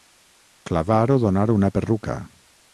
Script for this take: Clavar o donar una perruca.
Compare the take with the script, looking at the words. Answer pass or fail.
pass